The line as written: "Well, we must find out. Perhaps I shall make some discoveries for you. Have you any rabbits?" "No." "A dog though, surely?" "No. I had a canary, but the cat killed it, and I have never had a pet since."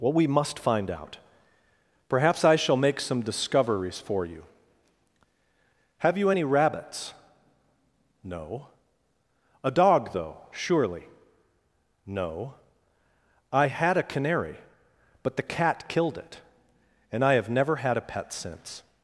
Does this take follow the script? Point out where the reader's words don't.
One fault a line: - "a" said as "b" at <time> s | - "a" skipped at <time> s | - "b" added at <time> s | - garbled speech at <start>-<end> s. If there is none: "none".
none